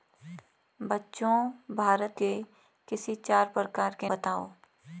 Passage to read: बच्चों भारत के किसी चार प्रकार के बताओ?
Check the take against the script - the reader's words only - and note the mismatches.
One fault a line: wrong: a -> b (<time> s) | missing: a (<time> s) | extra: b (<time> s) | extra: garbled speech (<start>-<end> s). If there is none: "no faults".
no faults